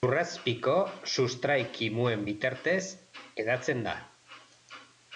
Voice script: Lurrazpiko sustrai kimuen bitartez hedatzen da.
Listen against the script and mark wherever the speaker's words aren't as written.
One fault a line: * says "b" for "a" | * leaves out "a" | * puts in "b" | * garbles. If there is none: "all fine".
all fine